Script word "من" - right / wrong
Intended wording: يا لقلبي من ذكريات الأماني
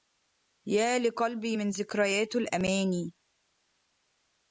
right